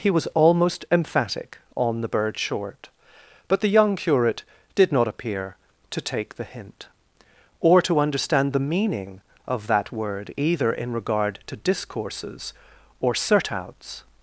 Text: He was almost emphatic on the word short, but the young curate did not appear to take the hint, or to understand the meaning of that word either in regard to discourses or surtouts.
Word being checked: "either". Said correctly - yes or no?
yes